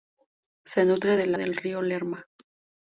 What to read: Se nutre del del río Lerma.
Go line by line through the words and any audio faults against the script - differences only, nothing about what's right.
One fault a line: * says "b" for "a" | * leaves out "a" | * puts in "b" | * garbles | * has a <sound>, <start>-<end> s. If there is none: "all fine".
all fine